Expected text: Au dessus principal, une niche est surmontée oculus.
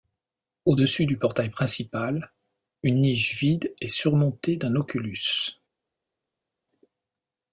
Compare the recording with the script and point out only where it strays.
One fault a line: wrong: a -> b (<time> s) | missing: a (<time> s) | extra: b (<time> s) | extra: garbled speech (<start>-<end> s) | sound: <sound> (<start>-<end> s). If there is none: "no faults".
extra: du portail (1.1 s)
extra: vide (3.4 s)
extra: d'un (4.6 s)